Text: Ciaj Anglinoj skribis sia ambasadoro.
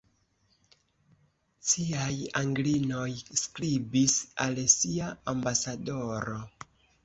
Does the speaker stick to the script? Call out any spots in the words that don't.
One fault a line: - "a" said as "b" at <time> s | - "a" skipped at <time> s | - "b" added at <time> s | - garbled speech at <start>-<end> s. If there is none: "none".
- "al" added at 4.5 s